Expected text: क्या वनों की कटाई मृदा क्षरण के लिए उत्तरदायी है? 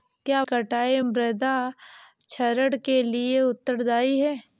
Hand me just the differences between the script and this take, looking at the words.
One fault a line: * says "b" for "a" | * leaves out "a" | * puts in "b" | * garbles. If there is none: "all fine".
* leaves out "वनों की"